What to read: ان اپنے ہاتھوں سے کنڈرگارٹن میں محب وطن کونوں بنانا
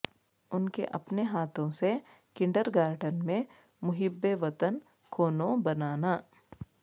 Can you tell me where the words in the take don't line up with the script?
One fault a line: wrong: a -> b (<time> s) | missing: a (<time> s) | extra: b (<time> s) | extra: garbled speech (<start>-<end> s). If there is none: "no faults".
extra: کے (0.7 s)